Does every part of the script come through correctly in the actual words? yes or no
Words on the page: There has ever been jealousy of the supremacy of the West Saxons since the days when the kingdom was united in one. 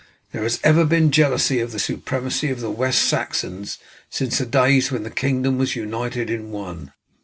yes